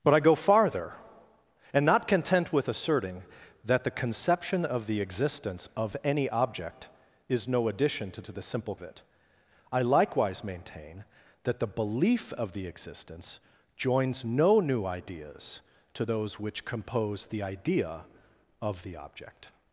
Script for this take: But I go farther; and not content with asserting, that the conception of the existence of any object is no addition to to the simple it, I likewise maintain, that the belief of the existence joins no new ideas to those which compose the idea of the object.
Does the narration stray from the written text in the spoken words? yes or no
no